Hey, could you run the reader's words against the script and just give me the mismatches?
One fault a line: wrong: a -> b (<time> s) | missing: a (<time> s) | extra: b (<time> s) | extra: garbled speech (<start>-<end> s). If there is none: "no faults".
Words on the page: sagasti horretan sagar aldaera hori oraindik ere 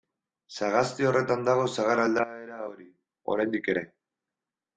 extra: dago (1.5 s)